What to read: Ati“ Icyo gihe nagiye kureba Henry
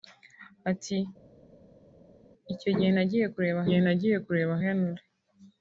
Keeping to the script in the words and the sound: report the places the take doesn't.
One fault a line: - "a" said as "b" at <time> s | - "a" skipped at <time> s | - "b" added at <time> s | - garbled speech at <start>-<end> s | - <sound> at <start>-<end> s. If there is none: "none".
- "gihe nagiye kureba" added at 3.7 s